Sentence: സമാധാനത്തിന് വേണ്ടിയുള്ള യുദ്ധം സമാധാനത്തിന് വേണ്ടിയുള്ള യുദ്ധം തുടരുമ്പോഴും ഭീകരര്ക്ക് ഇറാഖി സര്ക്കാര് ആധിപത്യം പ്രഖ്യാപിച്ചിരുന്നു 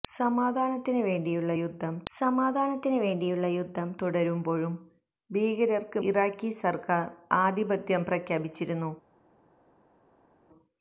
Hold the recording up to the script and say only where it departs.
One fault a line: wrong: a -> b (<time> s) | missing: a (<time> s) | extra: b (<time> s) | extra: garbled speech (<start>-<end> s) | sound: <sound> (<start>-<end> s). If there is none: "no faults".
no faults